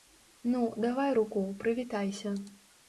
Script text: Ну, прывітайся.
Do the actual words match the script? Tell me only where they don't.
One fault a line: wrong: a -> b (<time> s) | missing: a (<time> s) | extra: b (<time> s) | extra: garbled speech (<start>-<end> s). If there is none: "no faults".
extra: давай руку (0.8 s)